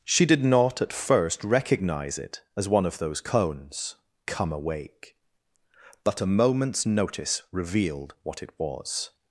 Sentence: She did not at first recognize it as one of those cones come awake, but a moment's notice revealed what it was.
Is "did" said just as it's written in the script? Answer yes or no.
yes